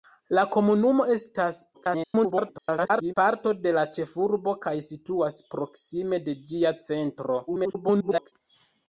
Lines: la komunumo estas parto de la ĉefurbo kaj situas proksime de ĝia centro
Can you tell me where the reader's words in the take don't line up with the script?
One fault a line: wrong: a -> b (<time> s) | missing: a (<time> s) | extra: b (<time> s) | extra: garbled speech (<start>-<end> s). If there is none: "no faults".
extra: garbled speech (1.7-3.1 s)
extra: garbled speech (7.5-8.3 s)